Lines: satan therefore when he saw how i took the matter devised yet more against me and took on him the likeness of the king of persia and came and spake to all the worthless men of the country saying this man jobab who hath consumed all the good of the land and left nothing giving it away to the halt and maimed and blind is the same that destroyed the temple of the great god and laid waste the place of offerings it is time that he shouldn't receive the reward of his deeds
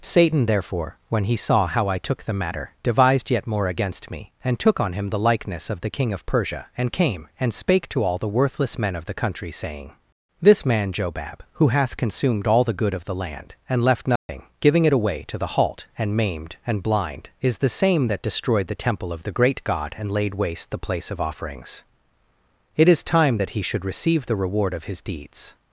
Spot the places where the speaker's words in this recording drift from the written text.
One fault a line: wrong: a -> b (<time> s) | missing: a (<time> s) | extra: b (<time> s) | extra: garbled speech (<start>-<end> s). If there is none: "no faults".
wrong: shouldn't -> should (23.6 s)